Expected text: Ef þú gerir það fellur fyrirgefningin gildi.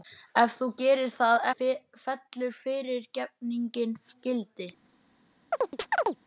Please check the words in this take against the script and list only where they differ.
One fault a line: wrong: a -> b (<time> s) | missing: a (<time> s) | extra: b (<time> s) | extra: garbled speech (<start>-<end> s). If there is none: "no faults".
no faults